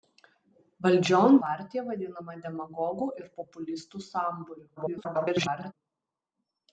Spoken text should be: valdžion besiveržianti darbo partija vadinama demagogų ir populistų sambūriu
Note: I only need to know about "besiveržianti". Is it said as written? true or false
false